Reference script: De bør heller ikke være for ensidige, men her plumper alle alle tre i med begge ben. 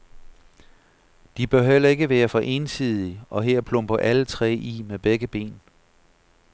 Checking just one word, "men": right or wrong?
wrong